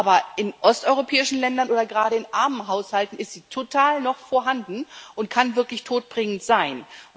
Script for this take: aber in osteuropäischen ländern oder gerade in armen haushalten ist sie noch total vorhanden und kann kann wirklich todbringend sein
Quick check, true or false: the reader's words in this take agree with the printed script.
false